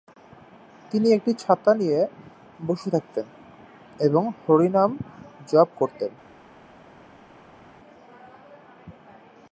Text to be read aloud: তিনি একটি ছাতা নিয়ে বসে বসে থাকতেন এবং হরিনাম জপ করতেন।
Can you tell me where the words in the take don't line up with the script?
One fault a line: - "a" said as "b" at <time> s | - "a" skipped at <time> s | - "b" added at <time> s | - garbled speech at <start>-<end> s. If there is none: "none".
- "বসে" skipped at 2.9 s